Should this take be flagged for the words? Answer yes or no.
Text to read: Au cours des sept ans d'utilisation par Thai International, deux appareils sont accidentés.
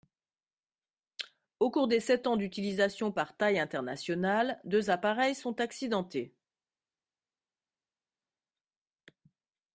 no